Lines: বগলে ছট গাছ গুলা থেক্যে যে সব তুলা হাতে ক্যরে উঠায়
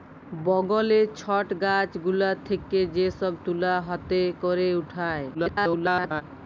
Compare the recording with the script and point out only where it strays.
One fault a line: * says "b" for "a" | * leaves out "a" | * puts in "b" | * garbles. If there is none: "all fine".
* garbles